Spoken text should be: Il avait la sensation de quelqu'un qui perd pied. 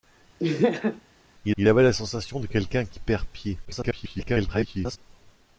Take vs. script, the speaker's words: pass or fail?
fail